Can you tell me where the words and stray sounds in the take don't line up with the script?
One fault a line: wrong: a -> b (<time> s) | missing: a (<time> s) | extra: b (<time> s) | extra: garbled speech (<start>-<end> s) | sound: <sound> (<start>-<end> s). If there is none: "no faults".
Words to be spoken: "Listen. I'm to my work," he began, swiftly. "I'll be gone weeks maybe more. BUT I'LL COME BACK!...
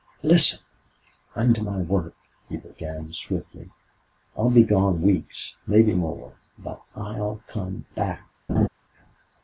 sound: laugh (8.5-8.7 s)